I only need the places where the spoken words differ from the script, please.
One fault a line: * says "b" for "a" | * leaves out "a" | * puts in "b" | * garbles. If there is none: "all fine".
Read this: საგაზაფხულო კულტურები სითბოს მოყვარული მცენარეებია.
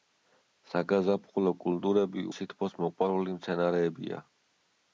all fine